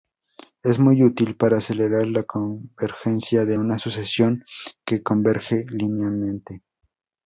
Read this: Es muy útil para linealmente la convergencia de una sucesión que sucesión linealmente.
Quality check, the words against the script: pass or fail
fail